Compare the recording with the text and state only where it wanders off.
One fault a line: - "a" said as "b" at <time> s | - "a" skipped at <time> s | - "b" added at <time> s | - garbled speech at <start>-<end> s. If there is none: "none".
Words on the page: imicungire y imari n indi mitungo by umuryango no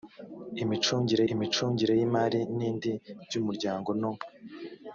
- "imicungire" added at 1.3 s
- "mitungo" skipped at 2.9 s